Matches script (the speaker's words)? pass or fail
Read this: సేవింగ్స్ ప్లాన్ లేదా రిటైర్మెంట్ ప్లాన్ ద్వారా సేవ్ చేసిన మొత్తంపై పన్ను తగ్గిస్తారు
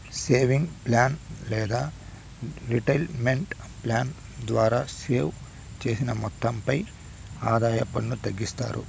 fail